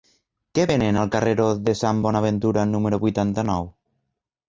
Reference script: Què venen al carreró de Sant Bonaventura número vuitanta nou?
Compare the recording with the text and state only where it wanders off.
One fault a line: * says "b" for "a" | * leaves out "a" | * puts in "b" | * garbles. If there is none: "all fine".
all fine